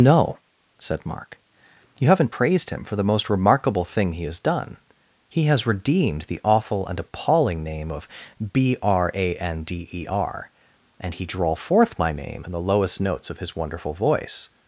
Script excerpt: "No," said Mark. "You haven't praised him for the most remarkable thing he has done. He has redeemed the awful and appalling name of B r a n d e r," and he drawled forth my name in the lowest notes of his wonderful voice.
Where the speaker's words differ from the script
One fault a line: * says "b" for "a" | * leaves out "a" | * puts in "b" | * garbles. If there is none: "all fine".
* says "drawl" for "drawled"